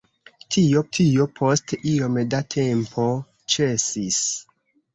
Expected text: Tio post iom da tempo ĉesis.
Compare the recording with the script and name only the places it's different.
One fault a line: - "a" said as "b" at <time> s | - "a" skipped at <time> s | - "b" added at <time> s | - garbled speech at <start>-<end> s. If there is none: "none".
- "tio" added at 1.0 s